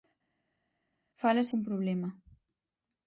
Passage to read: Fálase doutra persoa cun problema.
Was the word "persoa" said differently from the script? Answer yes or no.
yes